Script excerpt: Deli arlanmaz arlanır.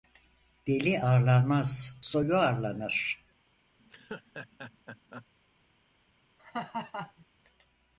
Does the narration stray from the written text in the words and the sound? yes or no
yes